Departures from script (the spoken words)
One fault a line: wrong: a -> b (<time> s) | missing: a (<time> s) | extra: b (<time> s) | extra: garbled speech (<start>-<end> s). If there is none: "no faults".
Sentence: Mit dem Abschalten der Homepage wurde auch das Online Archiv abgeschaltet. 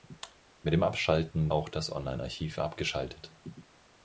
missing: der Homepage wurde (1.5 s)